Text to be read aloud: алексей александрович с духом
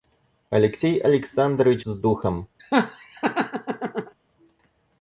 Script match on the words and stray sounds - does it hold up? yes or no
no